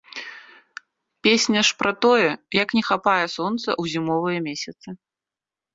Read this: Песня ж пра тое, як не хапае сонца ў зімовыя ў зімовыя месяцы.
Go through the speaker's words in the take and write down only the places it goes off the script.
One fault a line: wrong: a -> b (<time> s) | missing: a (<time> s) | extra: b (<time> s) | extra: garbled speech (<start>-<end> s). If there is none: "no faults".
missing: ў зімовыя (4.4 s)